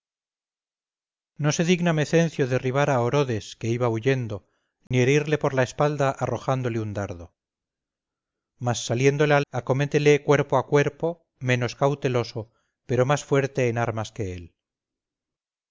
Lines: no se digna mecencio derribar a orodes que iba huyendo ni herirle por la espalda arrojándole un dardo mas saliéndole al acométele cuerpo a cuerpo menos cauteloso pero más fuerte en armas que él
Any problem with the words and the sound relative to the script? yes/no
yes